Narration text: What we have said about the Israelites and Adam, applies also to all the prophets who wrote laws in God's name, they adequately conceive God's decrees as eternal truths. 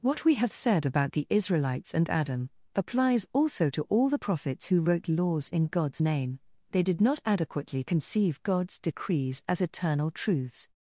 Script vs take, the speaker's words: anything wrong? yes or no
yes